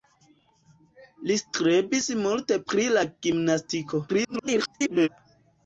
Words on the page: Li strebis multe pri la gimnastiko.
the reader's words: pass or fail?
fail